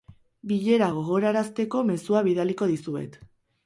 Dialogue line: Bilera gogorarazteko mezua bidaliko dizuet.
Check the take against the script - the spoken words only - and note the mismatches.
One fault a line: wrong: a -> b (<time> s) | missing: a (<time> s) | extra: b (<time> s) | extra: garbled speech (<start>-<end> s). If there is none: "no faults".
no faults